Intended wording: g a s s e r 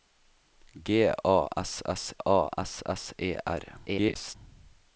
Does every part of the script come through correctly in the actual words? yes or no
no